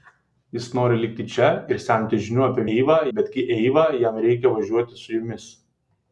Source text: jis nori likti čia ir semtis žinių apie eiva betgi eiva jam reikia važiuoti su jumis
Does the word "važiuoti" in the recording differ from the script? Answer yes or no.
no